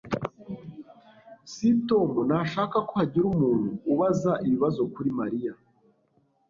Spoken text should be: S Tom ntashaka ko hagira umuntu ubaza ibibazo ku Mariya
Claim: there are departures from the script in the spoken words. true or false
true